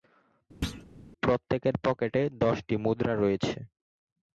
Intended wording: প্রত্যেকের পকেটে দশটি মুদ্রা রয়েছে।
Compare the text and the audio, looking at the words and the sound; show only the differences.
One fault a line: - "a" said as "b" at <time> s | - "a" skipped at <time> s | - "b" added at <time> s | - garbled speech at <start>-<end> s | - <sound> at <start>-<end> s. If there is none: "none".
- thud at 0.6-0.8 s